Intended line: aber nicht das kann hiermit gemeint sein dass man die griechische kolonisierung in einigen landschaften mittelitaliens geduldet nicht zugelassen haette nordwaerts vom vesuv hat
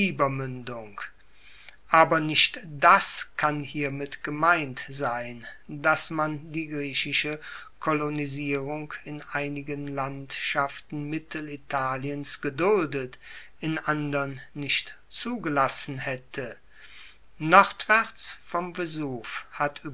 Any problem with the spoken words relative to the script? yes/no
yes